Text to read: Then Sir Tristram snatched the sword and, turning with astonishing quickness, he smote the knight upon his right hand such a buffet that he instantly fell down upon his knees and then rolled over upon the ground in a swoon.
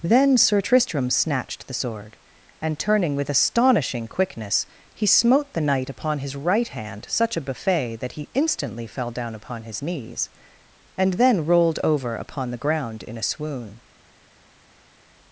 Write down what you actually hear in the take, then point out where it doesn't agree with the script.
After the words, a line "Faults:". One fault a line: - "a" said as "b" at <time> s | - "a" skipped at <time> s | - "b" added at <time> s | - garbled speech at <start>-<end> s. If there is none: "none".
Then Sir Tristram snatched the sword and, turning with astonishing quickness, he smote the knight upon his right hand such a buffet that he instantly fell down upon his knees and then rolled over upon the ground in a swoon.
Faults:
none